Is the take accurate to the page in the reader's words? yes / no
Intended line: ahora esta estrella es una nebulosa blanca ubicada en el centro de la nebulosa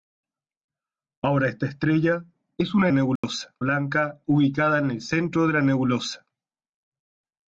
yes